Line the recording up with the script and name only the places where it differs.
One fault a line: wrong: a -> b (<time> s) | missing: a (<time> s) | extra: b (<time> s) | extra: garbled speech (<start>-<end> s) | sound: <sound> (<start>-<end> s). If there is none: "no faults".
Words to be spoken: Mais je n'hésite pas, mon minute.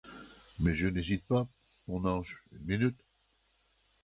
extra: ange une (2.0 s)